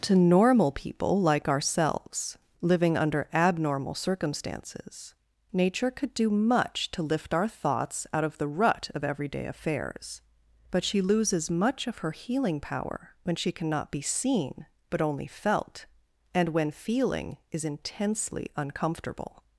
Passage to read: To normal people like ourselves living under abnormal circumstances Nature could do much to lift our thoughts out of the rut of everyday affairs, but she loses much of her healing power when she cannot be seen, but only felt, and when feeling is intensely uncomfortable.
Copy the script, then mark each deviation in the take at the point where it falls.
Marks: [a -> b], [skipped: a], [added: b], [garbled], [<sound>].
To normal people like ourselves living under abnormal circumstances Nature could do much to lift our thoughts out of the rut of everyday affairs, but she loses much of her healing power when she cannot be seen, but only felt, and when feeling is intensely uncomfortable.